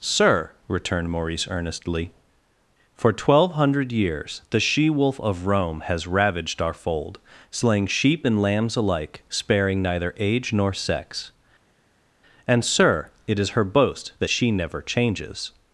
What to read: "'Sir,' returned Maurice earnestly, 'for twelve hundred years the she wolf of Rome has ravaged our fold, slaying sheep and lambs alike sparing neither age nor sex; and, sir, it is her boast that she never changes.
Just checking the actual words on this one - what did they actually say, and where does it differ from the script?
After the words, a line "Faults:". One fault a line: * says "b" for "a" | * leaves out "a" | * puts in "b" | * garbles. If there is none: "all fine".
"'Sir,' returned Maurice earnestly, 'for twelve hundred years the she wolf of Rome has ravaged our fold, slaying sheep and lambs alike sparing neither age nor sex; and, sir, it is her boast that she never changes.
Faults:
all fine